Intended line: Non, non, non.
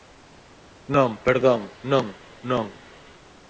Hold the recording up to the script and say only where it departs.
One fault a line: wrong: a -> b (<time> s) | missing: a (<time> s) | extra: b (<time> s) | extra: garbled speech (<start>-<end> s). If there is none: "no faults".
extra: perdón (1.2 s)